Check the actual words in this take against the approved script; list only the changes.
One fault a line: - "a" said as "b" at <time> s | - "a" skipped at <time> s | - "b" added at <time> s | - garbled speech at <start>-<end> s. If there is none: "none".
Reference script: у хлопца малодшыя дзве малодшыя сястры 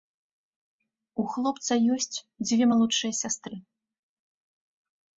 - "малодшыя" said as "ёсць" at 2.0 s